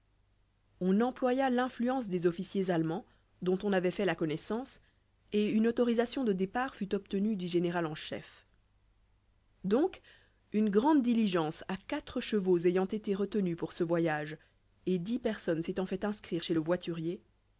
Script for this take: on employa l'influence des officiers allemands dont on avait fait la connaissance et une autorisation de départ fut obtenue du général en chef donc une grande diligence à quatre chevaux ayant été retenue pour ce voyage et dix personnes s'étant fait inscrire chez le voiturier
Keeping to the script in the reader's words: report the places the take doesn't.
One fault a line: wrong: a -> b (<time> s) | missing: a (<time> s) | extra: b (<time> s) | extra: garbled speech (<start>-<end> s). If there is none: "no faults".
no faults